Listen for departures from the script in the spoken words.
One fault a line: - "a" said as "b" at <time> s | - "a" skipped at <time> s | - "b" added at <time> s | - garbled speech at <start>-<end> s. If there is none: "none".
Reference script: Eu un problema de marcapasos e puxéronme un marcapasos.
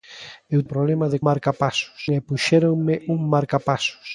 none